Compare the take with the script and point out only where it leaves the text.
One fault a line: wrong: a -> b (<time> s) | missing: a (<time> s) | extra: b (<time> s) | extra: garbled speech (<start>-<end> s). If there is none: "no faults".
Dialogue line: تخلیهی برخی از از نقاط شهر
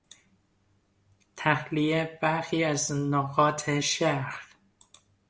missing: از (2.9 s)